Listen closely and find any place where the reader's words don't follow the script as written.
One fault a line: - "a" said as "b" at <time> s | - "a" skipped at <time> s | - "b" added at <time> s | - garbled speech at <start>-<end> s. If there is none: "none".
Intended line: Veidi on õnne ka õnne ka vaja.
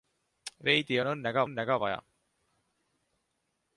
none